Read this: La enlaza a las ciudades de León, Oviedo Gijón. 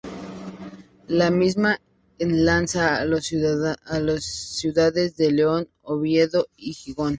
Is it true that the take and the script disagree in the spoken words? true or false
true